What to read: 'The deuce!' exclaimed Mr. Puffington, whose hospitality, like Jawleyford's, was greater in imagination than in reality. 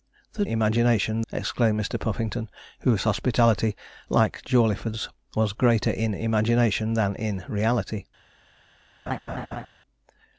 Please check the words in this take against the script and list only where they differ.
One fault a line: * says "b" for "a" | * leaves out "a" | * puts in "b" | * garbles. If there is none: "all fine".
* says "imagination" for "deuce"